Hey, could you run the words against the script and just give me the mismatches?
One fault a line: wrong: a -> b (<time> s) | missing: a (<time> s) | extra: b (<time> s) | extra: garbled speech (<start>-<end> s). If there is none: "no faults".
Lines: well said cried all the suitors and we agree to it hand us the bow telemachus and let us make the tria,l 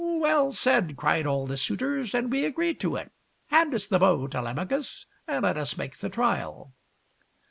no faults